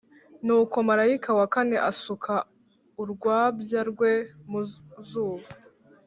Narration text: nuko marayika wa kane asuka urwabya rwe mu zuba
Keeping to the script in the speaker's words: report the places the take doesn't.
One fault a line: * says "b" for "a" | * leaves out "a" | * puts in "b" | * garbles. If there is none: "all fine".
all fine